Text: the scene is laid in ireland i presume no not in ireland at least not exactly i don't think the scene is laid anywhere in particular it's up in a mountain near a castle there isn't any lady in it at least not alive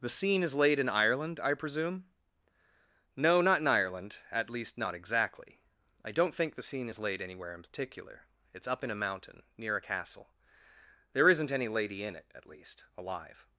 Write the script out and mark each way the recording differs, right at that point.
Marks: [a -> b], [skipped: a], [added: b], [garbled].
the scene is laid in ireland i presume no not in ireland at least not exactly i don't think the scene is laid anywhere in particular it's up in a mountain near a castle there isn't any lady in it at least [skipped: not] alive